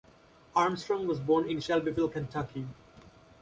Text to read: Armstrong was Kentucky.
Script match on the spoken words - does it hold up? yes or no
no